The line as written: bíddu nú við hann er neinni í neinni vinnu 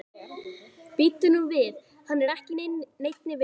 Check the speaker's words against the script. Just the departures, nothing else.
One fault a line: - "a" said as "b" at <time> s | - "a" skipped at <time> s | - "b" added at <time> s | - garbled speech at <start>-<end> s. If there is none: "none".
- "neinni" said as "ekki" at 2.4 s